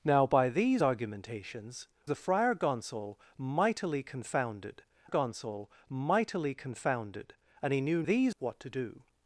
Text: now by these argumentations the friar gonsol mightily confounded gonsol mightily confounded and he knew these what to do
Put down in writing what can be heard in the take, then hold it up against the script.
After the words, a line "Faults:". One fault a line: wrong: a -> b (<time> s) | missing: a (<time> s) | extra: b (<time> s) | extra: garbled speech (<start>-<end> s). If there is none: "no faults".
now by these argumentations the friar gonsol mightily confounded gonsol mightily confounded and he knew these what to do
Faults:
no faults